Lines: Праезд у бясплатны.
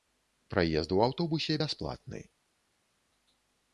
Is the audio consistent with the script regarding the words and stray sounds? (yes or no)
no